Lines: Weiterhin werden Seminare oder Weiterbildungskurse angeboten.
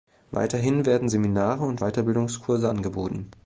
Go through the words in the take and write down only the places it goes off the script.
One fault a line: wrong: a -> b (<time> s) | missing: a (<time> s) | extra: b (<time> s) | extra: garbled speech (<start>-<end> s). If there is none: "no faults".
wrong: oder -> und (1.6 s)